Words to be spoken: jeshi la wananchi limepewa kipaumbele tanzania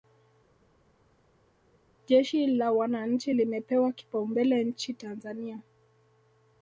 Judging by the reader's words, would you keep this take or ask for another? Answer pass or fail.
fail